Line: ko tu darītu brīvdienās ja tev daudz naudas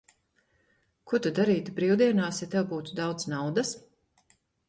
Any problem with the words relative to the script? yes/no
yes